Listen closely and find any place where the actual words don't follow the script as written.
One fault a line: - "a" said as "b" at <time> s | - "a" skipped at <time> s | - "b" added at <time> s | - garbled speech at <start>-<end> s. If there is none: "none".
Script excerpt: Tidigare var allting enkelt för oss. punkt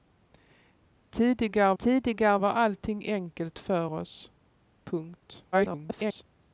- "tidigare" added at 1.8 s
- garbled speech at 5.5-6.2 s